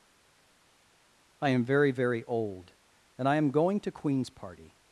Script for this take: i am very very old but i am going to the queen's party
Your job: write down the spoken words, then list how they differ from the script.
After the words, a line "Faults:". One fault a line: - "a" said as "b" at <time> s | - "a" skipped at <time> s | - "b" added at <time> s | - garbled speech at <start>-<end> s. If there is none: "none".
i am very very old and i am going to queen's party
Faults:
- "but" said as "and" at 3.2 s
- "the" skipped at 3.9 s